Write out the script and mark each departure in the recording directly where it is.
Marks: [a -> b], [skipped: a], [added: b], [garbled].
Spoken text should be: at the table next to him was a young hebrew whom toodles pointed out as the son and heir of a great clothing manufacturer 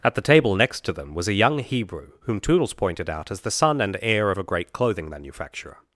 at the table next to [him -> them] was a young hebrew whom toodles pointed out as the son and heir of a great clothing manufacturer